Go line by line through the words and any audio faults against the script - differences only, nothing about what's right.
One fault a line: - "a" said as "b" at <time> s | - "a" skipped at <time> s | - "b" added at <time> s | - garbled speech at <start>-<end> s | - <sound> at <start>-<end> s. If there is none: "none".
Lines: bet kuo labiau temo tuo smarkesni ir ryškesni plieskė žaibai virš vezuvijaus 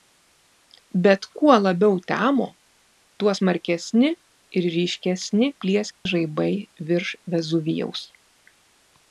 - dropout at 5.9-6.1 s